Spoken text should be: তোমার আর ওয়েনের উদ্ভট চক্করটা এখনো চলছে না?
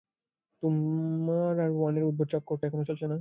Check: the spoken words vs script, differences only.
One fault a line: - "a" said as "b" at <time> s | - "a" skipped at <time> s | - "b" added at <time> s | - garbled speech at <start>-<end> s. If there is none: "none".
none